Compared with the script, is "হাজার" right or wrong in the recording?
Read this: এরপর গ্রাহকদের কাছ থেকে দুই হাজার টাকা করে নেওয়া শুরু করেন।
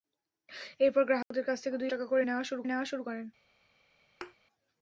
wrong